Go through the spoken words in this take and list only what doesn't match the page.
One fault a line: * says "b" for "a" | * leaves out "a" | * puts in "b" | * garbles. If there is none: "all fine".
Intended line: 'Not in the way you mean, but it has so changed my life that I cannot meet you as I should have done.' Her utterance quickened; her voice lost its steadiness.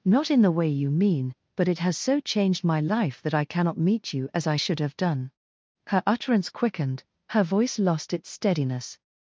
all fine